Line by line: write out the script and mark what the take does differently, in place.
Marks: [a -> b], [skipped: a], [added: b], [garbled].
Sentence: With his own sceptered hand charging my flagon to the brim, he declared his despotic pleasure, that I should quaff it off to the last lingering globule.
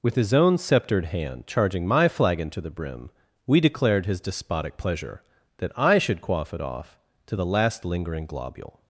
With his own sceptered hand charging my flagon to the brim, [he -> we] declared his despotic pleasure, that I should quaff it off to the last lingering globule.